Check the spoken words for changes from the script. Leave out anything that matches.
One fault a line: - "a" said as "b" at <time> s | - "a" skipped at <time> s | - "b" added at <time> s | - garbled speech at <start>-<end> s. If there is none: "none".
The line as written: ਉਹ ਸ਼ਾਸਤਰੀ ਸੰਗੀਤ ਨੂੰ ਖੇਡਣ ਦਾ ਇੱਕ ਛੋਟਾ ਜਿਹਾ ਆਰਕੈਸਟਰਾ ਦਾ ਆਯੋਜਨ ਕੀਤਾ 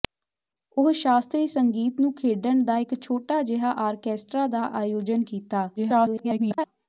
- garbled speech at 5.8-6.7 s